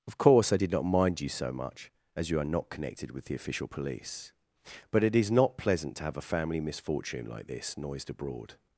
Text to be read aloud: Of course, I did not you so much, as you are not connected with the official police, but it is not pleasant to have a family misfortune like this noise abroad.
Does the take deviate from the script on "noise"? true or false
true